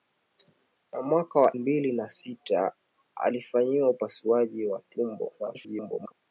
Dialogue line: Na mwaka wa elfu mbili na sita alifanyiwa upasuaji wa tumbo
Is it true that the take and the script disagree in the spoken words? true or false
true